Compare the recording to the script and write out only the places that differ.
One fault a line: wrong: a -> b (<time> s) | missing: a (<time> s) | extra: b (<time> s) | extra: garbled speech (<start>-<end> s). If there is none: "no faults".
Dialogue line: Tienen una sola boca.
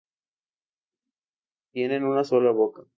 no faults